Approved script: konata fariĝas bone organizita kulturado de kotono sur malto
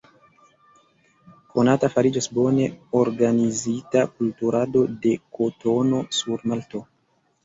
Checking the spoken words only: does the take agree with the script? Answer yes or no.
yes